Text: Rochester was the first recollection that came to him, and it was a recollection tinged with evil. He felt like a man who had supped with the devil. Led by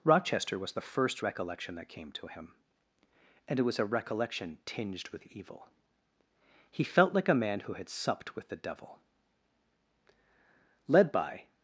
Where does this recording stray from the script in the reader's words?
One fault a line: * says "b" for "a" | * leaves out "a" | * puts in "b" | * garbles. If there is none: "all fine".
all fine